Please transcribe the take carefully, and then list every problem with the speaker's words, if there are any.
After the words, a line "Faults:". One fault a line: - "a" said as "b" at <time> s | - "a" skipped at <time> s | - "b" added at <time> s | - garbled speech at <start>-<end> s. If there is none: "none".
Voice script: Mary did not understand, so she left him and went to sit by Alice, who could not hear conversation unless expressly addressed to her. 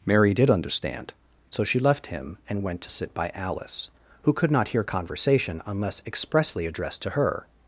Mary did understand, so she left him and went to sit by Alice, who could not hear conversation unless expressly addressed to her.
Faults:
- "not" skipped at 0.5 s